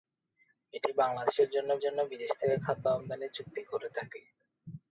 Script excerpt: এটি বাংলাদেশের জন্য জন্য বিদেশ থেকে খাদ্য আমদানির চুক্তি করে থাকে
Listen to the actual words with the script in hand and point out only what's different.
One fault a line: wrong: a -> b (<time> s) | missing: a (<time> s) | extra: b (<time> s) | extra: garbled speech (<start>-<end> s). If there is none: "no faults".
no faults